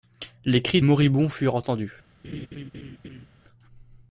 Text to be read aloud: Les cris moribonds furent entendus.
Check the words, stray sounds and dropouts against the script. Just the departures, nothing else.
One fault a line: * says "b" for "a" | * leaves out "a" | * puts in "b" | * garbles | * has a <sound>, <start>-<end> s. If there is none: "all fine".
* has a laugh, 2.2-3.3 s